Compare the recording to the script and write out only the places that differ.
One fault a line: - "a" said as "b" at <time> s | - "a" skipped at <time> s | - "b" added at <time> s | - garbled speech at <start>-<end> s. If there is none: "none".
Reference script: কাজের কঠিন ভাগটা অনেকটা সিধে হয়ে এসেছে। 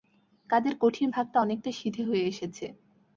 none